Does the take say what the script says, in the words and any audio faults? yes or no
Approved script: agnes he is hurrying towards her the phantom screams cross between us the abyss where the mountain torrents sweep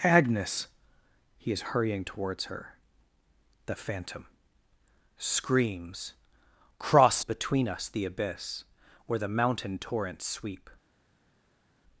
yes